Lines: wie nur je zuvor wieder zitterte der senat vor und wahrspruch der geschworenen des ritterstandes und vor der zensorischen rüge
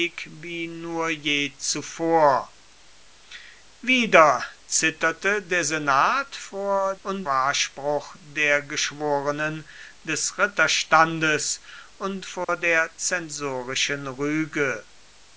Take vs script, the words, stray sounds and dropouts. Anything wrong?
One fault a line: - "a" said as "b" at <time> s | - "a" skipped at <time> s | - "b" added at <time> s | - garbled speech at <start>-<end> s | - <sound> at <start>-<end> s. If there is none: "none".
- dropout at 12.4-12.5 s